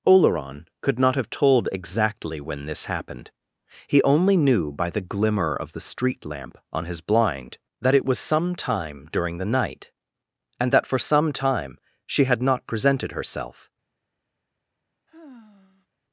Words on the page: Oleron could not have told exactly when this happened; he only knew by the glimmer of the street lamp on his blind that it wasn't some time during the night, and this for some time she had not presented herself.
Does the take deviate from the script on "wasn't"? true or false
true